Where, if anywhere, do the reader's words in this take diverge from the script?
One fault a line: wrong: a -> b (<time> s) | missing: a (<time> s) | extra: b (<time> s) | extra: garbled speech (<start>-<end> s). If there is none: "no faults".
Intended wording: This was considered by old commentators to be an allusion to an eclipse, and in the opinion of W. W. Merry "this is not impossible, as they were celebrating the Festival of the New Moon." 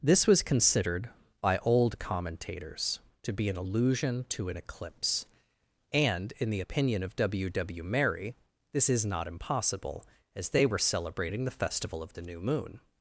no faults